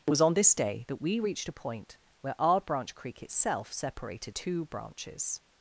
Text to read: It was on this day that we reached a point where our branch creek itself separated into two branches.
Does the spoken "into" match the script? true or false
false